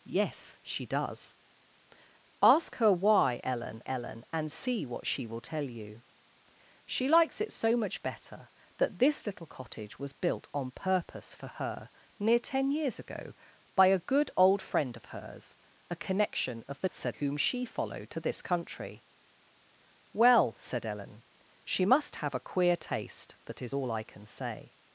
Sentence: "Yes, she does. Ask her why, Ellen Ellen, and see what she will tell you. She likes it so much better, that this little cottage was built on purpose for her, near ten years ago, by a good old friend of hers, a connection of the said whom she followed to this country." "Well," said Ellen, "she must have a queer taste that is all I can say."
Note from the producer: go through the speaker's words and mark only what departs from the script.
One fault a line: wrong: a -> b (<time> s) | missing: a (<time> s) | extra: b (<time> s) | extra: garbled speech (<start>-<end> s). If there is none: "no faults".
no faults